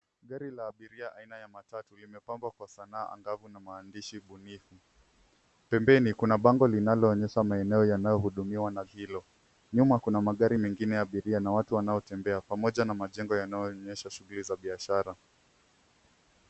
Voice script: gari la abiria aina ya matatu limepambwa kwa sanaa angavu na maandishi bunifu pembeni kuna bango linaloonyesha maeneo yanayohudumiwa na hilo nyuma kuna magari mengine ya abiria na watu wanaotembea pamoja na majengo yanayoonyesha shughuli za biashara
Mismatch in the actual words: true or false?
false